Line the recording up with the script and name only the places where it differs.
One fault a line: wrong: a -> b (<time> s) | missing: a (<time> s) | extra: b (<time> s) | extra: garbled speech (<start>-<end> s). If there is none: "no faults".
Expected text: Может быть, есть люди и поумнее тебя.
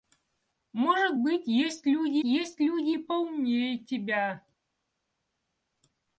extra: есть люди (2.2 s)